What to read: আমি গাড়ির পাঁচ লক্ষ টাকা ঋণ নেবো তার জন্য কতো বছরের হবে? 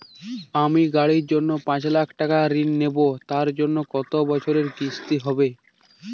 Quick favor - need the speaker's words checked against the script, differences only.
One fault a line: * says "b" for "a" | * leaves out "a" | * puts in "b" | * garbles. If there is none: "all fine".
* puts in "জন্য"
* puts in "কিস্তি"